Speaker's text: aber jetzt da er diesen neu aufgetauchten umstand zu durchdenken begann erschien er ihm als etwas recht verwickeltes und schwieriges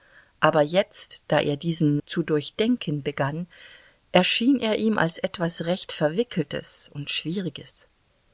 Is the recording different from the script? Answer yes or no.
yes